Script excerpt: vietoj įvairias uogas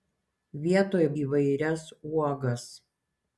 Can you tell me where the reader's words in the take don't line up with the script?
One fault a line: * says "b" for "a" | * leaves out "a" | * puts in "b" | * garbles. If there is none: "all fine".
all fine